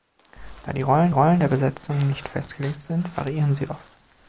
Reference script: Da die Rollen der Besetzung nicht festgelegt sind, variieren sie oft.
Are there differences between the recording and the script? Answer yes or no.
yes